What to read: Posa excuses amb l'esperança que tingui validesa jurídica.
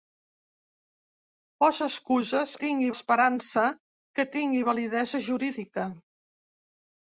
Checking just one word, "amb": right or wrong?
wrong